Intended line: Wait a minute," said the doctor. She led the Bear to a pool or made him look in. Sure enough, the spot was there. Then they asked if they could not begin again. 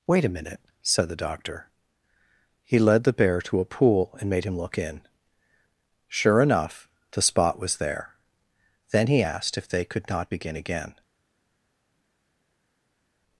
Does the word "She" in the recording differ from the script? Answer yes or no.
yes